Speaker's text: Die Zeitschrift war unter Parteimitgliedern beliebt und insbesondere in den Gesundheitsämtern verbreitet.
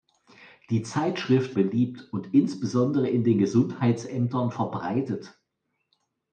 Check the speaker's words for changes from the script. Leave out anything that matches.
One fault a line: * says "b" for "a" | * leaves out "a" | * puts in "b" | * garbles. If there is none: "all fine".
* leaves out "war unter Parteimitgliedern"